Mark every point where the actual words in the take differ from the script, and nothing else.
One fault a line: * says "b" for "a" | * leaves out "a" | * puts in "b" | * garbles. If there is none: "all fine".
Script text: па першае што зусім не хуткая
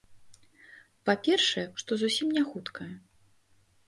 all fine